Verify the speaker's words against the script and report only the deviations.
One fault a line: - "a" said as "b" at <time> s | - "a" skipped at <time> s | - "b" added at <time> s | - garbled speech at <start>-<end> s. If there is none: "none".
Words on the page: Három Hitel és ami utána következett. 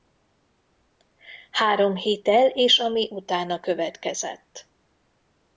none